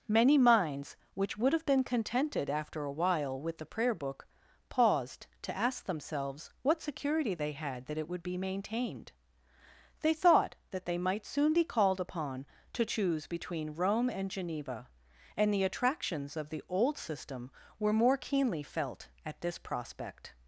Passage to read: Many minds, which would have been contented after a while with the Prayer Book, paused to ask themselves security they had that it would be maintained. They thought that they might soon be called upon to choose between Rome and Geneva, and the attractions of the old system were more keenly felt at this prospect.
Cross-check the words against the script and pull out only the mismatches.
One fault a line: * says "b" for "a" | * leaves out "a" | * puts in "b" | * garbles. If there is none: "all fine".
* puts in "what"